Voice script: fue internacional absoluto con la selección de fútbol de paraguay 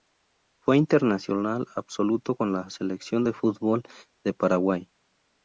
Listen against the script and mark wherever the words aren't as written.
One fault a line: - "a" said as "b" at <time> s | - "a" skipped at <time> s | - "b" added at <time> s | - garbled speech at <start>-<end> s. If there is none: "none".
none